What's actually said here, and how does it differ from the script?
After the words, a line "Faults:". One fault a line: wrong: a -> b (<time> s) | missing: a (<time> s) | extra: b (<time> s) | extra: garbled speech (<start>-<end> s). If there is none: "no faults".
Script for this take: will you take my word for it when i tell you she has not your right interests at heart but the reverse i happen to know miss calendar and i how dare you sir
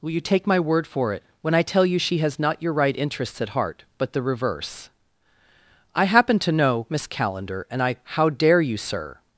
will you take my word for it when i tell you she has not your right interests at heart but the reverse i happen to know miss calendar and i how dare you sir
Faults:
no faults